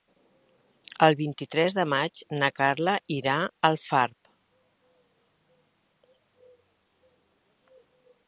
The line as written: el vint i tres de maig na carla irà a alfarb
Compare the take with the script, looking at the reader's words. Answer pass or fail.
pass